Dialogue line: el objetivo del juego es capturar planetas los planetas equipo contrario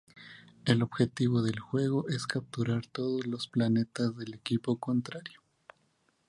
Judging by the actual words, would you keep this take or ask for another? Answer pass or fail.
fail